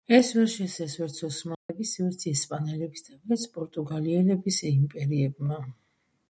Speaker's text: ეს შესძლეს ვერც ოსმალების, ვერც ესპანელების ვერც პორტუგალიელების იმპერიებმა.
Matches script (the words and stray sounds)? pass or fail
fail